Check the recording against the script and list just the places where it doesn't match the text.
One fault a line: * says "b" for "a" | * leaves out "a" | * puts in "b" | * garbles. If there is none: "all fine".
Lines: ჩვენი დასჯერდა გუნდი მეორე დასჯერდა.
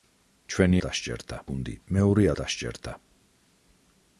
all fine